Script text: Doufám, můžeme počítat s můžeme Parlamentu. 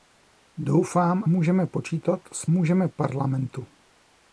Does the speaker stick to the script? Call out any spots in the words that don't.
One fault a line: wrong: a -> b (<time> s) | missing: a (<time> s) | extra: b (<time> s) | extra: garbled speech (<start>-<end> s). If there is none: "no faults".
no faults